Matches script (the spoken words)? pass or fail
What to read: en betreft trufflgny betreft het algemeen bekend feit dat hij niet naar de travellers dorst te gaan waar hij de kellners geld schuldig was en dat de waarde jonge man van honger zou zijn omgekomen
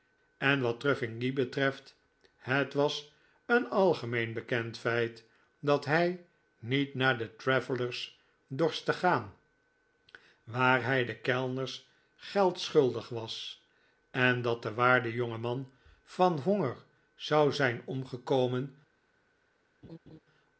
fail